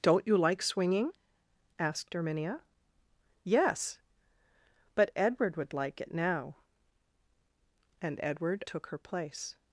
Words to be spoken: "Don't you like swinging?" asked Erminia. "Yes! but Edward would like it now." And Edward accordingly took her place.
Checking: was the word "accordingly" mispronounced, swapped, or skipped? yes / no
yes